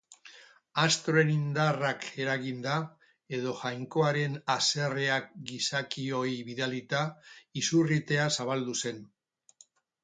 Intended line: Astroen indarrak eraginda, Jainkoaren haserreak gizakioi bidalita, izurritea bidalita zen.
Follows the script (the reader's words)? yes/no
no